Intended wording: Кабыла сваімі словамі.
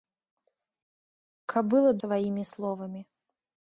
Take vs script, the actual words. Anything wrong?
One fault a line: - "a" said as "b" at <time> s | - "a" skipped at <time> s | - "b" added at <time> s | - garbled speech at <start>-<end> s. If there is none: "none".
none